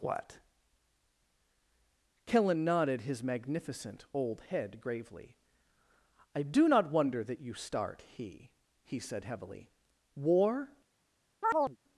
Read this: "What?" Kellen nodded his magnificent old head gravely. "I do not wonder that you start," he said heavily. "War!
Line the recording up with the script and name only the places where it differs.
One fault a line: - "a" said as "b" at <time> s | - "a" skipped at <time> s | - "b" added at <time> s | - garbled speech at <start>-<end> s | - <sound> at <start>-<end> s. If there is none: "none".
- "he" added at 8.8 s
- chirp at 11.4-11.8 s